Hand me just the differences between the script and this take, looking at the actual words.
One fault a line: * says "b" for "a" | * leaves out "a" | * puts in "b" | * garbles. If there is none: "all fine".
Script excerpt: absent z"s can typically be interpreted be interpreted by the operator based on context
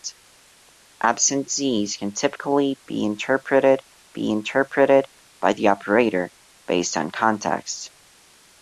all fine